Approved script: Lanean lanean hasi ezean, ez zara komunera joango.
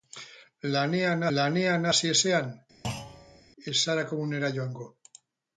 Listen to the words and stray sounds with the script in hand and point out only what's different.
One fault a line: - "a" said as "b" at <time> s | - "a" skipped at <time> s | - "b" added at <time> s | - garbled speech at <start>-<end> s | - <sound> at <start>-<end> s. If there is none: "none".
- thud at 2.8-3.4 s